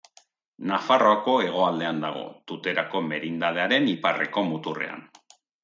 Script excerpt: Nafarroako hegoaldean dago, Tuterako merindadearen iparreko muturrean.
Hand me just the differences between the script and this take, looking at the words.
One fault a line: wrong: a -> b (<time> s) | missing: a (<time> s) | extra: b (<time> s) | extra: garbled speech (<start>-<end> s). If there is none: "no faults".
no faults